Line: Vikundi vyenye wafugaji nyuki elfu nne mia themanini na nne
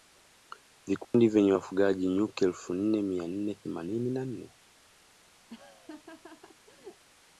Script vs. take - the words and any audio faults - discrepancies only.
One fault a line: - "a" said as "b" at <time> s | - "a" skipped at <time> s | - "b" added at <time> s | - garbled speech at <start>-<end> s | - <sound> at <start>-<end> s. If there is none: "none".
- dropout at 1.0-1.1 s
- "nne" added at 3.3 s
- laugh at 5.5-7.0 s